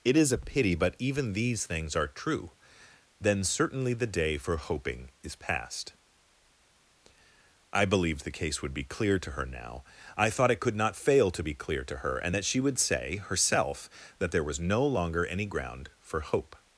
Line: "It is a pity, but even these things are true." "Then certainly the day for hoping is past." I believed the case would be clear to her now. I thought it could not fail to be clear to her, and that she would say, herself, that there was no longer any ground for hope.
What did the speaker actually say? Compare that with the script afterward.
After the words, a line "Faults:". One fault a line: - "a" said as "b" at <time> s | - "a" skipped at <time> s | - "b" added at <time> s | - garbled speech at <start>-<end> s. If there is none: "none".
"It is a pity, but even these things are true." "Then certainly the day for hoping is past." I believed the case would be clear to her now. I thought it could not fail to be clear to her, and that she would say, herself, that there was no longer any ground for hope.
Faults:
none